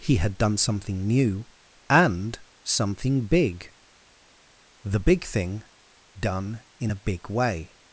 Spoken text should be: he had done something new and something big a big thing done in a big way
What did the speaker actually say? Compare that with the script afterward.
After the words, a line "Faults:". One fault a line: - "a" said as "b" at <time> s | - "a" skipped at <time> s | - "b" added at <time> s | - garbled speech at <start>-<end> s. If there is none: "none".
he had done something new and something big the big thing done in a big way
Faults:
- "a" said as "the" at 4.8 s